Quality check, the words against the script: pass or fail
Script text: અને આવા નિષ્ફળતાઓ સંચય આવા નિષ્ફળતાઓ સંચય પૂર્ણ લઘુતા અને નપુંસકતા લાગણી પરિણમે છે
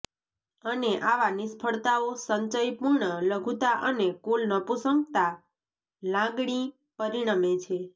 fail